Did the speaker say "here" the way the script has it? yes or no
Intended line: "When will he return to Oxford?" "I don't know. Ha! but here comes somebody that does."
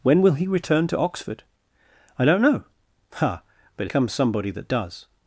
no